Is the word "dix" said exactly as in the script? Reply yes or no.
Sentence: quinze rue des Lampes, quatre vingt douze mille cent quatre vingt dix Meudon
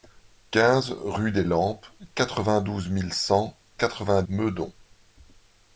no